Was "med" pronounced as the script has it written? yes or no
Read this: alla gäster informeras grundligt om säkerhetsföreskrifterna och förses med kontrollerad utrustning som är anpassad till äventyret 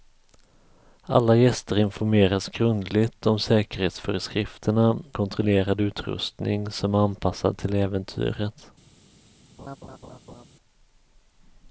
no